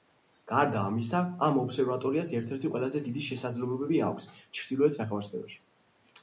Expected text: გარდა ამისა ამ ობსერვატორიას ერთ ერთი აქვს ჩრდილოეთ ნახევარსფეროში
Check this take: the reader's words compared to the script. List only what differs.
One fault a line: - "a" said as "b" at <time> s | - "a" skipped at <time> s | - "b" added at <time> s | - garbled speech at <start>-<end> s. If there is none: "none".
- "ყველაზე დიდი შესაძლებლობები" added at 2.8 s